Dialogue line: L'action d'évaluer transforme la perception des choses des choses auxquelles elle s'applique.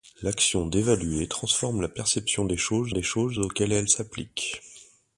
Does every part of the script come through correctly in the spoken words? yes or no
yes